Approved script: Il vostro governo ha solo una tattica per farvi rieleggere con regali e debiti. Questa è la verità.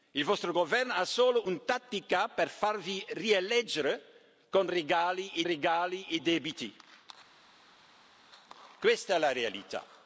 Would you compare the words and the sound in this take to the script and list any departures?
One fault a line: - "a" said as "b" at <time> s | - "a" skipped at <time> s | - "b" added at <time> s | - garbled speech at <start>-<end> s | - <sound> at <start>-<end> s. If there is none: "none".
- "regali e" added at 5.4 s